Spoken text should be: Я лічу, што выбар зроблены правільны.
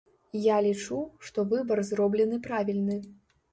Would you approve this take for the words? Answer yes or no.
yes